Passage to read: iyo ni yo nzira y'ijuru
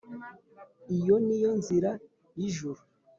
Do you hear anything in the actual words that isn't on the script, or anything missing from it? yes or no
no